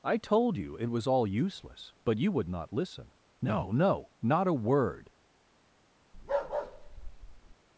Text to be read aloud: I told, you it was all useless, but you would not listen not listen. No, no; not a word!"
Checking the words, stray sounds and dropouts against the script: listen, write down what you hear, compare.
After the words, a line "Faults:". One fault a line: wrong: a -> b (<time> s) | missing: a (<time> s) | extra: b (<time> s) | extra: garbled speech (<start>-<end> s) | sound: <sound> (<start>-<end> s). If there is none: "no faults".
I told, you it was all useless, but you would not listen. No, no; not a word!"
Faults:
missing: not listen (3.1 s)
sound: bark (6.1-7.6 s)